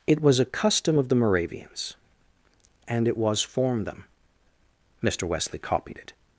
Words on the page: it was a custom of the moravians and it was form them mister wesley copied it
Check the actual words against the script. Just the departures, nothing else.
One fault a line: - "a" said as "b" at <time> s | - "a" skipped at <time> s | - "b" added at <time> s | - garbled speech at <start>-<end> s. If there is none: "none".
none